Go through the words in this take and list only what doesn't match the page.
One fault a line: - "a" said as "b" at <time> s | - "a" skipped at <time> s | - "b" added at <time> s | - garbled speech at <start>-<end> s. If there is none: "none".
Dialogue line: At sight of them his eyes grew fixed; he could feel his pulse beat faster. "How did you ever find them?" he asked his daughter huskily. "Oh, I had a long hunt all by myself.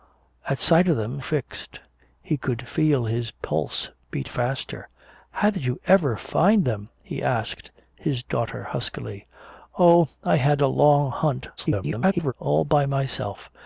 - "his eyes grew" skipped at 1.2 s
- garbled speech at 11.6-12.3 s